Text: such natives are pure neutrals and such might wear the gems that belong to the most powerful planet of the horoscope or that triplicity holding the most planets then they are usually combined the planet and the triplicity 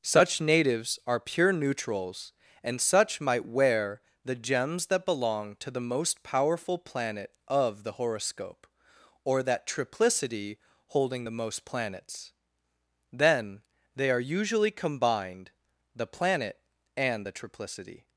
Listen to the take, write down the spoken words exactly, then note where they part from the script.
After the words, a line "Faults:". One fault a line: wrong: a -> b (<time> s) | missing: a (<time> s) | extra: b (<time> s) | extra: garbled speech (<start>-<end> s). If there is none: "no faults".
such natives are pure neutrals and such might wear the gems that belong to the most powerful planet of the horoscope or that triplicity holding the most planets then they are usually combined the planet and the triplicity
Faults:
no faults